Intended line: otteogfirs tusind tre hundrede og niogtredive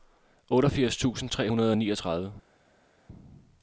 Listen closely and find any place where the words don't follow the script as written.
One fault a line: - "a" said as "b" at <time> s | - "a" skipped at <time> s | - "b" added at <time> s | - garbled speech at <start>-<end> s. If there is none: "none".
none